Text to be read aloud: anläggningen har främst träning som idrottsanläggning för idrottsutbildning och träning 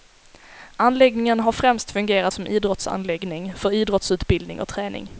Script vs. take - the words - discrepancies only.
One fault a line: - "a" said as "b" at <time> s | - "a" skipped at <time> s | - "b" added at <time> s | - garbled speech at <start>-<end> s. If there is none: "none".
- "träning" said as "fungerat" at 1.9 s